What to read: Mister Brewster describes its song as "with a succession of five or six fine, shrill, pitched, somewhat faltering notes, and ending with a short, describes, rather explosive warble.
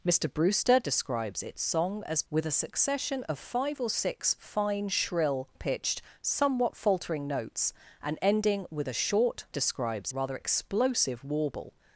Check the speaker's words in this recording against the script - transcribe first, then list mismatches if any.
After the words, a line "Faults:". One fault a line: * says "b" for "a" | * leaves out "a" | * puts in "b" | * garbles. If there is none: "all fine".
Mister Brewster describes its song as "with a succession of five or six fine, shrill, pitched, somewhat faltering notes, and ending with a short, describes, rather explosive warble.
Faults:
all fine